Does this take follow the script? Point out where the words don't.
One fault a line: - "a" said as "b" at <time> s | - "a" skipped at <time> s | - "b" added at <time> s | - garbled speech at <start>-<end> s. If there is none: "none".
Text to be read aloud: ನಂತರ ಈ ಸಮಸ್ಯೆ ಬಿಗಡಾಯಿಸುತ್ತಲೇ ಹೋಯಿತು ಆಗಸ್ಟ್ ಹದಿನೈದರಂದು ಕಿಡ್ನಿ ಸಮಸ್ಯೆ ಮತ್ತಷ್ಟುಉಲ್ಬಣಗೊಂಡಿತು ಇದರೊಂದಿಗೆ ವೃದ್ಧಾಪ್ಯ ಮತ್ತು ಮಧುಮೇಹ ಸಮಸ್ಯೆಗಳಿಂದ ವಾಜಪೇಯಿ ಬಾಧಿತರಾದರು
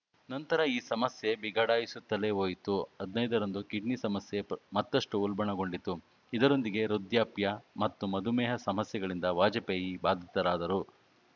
- "ಆಗಸ್ಟ್" skipped at 2.8 s